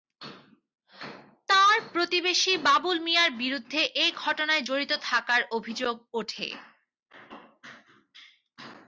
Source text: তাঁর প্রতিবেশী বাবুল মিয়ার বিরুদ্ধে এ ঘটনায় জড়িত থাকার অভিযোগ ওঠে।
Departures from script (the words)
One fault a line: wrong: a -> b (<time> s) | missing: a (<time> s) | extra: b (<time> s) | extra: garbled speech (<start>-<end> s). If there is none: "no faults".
no faults